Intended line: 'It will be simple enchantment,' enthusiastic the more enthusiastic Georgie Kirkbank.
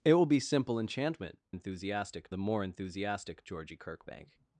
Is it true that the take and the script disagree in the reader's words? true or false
false